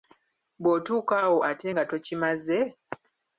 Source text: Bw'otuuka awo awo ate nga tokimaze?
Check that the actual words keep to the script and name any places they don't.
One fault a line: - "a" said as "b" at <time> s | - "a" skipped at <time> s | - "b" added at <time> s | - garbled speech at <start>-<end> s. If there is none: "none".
- "awo" skipped at 1.4 s